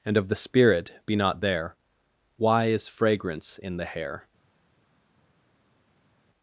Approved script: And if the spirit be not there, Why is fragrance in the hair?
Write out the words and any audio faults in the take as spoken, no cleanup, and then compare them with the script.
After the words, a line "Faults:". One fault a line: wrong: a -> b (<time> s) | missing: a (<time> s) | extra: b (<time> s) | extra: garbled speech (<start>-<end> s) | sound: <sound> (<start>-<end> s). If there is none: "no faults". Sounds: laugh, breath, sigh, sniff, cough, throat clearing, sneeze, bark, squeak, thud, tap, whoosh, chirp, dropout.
And of the spirit be not there, Why is fragrance in the hair?
Faults:
wrong: if -> of (0.2 s)